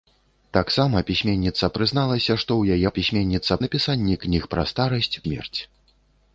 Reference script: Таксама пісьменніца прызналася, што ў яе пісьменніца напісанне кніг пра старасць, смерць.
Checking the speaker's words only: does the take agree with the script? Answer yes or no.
yes